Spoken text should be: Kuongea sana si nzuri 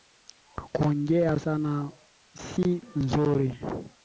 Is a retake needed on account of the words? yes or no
no